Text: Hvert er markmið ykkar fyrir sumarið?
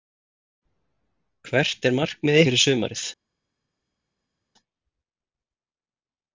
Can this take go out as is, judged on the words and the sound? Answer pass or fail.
fail